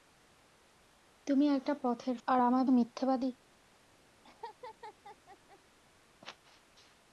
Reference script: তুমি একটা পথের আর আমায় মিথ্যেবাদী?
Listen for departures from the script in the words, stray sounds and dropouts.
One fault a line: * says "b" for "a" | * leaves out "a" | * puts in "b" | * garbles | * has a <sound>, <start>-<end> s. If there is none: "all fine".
* has a laugh, 4.2-5.6 s